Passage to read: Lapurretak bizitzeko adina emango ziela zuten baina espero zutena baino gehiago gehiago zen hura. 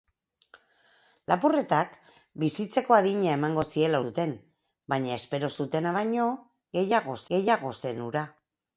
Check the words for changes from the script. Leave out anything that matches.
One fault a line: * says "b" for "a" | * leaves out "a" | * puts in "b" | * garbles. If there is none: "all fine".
all fine